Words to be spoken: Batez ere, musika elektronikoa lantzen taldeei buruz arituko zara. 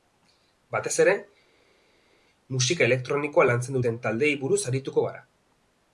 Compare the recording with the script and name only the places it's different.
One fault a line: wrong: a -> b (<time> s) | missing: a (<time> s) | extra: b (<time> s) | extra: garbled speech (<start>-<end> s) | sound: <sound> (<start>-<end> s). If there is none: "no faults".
extra: duten (3.8 s)
wrong: zara -> gara (5.1 s)